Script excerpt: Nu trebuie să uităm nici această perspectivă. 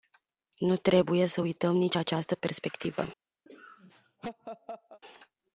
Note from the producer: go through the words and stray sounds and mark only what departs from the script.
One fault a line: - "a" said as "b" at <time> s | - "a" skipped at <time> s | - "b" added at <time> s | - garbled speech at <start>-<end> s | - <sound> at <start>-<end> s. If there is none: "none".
- laugh at 3.5-5.0 s